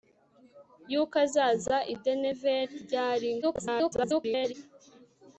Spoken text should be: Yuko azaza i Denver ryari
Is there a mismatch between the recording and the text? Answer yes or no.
yes